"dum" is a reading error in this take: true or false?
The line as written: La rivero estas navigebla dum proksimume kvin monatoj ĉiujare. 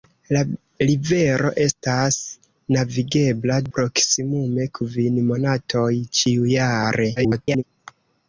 true